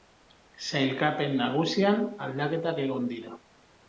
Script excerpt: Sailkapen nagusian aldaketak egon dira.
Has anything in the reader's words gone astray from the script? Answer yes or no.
no